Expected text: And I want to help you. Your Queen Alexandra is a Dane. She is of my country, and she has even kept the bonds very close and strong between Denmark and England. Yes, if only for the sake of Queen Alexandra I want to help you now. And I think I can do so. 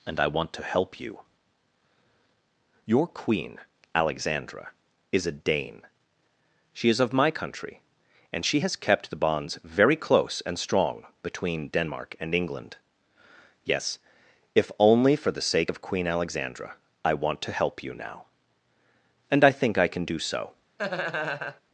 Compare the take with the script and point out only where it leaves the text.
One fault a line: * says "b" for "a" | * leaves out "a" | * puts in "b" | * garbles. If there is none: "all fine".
* leaves out "even"